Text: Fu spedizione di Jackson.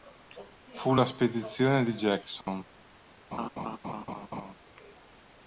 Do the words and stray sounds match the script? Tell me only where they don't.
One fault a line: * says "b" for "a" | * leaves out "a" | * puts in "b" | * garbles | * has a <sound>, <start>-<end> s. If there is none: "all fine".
* puts in "la"
* has a dropout, 2.4-2.5 s
* has a laugh, 3.3-4.5 s